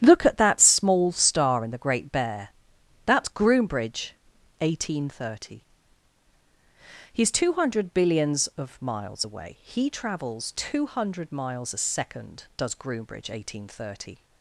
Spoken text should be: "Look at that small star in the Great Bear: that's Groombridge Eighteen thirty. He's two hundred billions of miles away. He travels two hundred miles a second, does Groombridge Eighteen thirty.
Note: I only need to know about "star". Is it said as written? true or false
true